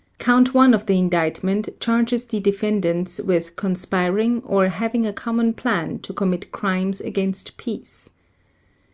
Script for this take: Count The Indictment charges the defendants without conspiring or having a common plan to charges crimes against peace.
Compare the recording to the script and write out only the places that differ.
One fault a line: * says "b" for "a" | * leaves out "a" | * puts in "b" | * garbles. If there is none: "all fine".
* puts in "One of"
* says "with" for "without"
* says "commit" for "charges"